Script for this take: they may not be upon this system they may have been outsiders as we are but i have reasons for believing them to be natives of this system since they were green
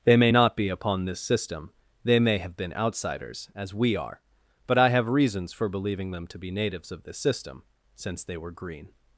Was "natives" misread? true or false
false